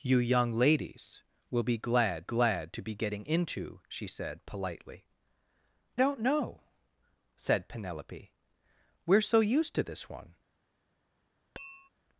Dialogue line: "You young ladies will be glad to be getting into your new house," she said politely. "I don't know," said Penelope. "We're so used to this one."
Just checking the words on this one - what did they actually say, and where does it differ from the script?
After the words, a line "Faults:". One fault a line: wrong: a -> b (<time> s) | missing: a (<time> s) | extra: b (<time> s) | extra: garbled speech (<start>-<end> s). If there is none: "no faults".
"You young ladies will be glad glad to be getting into," she said politely. "don't know," said Penelope. "We're so used to this one."
Faults:
extra: glad (2.2 s)
missing: your new house (3.8 s)
missing: I (5.1 s)